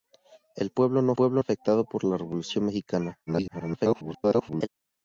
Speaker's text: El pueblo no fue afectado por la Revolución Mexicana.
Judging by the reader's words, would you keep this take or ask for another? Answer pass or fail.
fail